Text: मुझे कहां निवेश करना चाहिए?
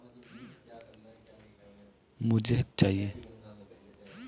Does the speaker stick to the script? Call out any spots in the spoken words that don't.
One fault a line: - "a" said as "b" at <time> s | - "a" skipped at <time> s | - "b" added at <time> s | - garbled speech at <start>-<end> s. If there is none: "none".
- "कहां निवेश करना" skipped at 2.6 s